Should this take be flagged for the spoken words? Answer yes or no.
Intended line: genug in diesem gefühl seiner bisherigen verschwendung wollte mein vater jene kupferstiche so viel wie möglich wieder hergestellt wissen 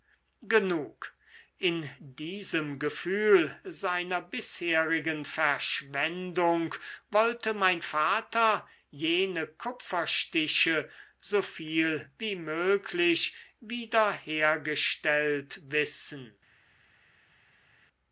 no